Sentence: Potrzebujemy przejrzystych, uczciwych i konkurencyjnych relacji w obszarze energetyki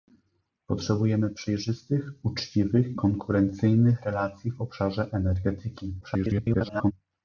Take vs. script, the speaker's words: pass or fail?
fail